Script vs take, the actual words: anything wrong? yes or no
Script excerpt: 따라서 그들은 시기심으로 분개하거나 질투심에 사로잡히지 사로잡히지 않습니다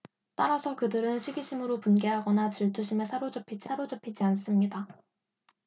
no